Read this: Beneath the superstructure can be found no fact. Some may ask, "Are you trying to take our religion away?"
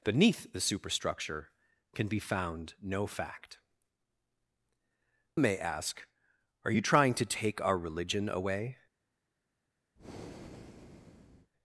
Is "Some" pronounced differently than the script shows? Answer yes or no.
yes